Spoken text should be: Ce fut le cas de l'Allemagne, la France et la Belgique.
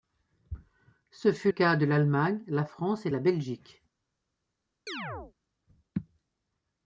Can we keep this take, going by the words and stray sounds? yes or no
no